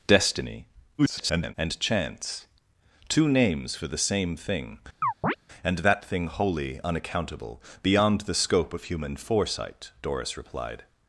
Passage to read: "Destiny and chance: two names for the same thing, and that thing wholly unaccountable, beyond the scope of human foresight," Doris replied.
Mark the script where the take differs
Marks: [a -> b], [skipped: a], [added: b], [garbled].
"Destiny [garbled] and chance: two names for the same thing, and that thing wholly unaccountable, beyond the scope of human foresight," Doris replied.